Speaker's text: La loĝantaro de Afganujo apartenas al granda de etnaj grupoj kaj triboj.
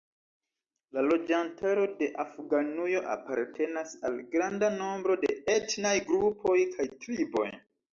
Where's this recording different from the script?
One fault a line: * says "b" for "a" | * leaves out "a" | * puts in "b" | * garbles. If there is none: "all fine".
* puts in "nombro"